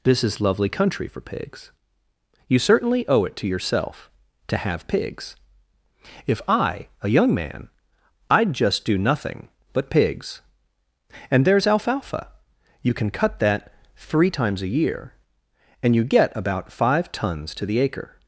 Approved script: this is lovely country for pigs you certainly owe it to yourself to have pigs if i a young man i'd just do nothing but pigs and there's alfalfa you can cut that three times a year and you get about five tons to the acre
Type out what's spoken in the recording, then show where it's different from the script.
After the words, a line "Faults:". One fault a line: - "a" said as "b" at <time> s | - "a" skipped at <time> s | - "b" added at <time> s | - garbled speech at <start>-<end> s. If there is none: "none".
this is lovely country for pigs you certainly owe it to yourself to have pigs if i a young man i'd just do nothing but pigs and there's alfalfa you can cut that three times a year and you get about five tons to the acre
Faults:
none